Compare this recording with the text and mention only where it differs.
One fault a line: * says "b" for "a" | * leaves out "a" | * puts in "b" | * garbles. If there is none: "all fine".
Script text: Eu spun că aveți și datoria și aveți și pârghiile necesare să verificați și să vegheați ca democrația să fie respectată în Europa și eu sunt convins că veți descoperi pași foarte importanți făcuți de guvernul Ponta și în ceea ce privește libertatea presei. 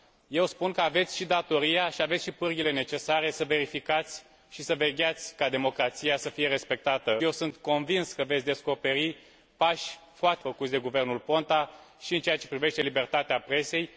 * leaves out "în Europa și"
* leaves out "importanți"